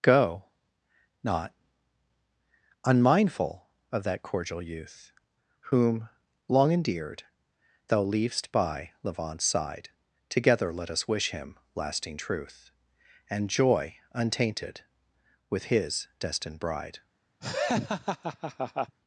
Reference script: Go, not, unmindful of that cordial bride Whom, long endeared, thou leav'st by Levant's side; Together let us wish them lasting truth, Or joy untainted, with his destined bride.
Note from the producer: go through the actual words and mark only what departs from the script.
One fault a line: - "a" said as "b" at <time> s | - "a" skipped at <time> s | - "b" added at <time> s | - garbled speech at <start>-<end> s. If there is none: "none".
- "bride" said as "youth" at 4.6 s
- "them" said as "him" at 11.3 s
- "Or" said as "And" at 13.3 s